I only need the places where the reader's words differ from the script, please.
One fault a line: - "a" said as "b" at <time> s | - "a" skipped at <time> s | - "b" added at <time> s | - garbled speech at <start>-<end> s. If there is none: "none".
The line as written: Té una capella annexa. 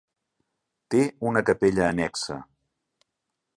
none